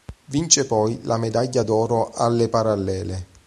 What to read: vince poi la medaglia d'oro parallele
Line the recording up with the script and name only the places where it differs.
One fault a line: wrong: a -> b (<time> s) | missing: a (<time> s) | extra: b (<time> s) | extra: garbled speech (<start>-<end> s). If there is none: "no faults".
extra: alle (2.1 s)